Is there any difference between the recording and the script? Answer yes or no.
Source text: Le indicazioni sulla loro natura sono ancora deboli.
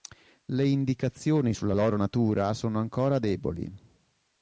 no